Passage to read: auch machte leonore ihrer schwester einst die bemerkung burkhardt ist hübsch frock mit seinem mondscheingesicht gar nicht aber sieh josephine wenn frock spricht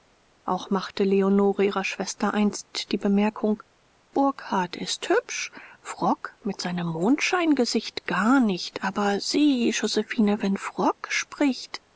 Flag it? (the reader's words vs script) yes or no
no